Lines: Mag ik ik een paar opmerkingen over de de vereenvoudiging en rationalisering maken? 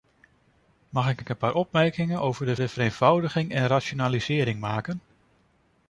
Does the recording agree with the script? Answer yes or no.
yes